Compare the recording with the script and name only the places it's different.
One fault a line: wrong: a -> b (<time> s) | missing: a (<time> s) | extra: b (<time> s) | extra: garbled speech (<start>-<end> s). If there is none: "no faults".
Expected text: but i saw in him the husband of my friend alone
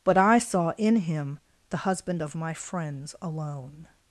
wrong: friend -> friends (2.5 s)